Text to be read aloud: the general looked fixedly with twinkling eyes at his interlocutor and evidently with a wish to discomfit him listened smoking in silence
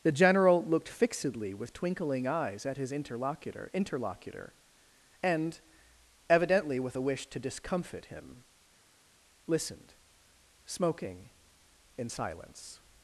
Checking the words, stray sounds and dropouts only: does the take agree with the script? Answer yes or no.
no